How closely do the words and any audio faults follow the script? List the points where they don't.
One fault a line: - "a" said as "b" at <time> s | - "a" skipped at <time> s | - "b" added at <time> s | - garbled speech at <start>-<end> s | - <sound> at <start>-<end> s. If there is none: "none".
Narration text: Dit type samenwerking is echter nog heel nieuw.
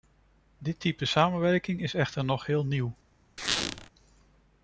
- squeak at 3.4-3.9 s